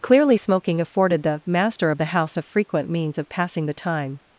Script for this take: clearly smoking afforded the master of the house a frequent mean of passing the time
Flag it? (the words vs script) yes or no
yes